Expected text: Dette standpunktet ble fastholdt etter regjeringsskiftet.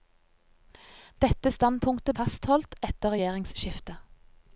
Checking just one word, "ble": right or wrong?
wrong